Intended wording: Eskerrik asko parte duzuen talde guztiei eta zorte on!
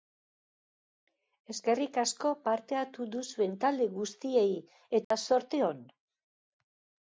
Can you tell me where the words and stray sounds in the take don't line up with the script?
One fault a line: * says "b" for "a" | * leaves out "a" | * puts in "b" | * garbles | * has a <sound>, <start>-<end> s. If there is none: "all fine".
* puts in "hartu"
* has a dropout, 5.0-5.1 s